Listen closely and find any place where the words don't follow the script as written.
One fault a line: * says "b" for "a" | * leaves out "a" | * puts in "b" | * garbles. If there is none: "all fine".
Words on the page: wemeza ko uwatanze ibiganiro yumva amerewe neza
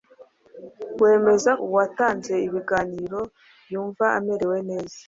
* leaves out "ko"